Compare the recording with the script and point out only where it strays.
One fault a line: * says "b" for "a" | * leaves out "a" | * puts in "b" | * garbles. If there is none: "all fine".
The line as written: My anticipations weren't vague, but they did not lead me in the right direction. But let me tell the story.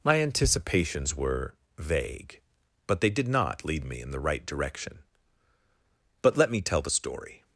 * says "were" for "weren't"